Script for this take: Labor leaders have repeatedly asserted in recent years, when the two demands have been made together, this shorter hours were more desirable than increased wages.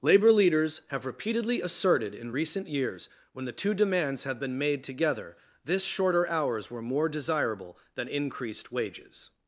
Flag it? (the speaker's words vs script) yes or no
no